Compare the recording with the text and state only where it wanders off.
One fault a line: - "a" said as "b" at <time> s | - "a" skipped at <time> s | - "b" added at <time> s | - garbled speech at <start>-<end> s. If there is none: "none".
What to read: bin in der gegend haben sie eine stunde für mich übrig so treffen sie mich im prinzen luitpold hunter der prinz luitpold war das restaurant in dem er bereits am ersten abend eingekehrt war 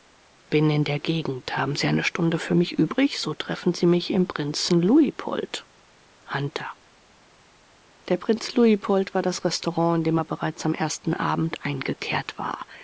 none